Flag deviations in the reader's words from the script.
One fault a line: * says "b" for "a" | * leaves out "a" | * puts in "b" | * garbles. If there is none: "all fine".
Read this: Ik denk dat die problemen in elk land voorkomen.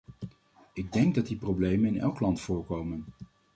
all fine